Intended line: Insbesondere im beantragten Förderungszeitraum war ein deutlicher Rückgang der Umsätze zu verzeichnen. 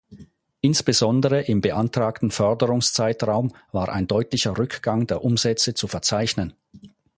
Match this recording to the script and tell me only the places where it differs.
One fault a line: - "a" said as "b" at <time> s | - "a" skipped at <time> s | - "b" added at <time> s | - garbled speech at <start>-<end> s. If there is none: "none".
none